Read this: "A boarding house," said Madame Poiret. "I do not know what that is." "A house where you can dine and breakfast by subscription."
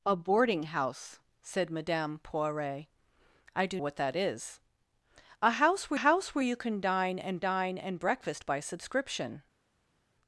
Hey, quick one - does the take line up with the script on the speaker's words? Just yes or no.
no